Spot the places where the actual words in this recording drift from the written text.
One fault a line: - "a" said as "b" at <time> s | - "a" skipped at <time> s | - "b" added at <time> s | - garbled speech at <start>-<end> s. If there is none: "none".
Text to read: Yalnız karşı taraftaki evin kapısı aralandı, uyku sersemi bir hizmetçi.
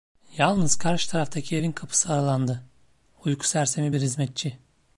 none